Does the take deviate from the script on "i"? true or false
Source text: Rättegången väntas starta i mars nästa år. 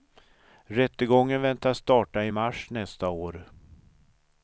false